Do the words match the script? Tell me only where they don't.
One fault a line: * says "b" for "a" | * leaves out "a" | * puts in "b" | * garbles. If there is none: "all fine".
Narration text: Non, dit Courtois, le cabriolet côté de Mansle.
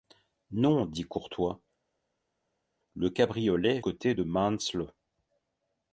all fine